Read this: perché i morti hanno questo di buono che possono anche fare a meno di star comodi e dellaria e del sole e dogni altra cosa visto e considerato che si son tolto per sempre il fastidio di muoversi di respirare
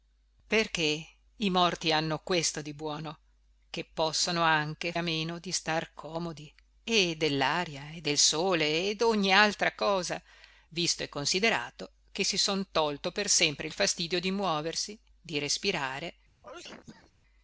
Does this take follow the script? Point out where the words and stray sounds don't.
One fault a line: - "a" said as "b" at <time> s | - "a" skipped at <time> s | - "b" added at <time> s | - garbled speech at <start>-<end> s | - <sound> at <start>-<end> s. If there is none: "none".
- "fare" skipped at 4.9 s
- sneeze at 16.4-17.1 s